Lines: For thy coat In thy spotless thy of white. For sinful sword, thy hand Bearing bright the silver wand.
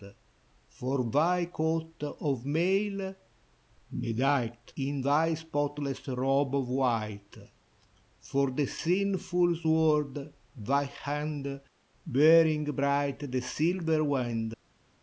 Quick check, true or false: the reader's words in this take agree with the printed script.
false